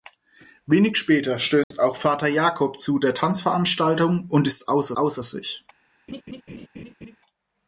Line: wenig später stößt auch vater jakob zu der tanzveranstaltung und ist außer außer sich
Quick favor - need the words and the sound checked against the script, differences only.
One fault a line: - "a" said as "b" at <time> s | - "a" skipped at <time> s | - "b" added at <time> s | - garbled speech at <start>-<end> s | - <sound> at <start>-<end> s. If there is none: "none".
- dropout at 1.6-1.7 s
- laugh at 6.1-7.2 s